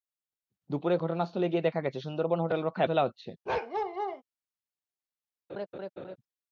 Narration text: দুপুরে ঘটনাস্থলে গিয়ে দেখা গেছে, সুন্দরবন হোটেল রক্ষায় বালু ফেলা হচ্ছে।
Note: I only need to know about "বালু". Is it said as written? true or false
false